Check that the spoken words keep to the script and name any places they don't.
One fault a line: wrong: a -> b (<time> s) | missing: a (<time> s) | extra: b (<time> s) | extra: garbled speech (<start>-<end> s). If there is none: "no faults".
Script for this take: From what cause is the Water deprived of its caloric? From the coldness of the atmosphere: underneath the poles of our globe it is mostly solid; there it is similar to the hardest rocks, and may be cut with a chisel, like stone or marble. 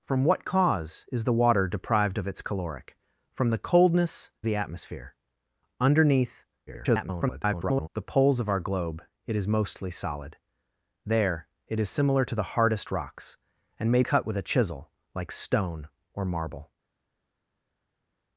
missing: of (4.3 s)
extra: garbled speech (6.7-7.9 s)
missing: be (14.0 s)